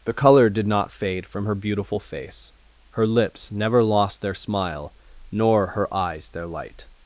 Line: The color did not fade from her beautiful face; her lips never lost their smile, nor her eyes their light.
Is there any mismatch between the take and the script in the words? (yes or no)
no